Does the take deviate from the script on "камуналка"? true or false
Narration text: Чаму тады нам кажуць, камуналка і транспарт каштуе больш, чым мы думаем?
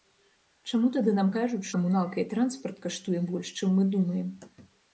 false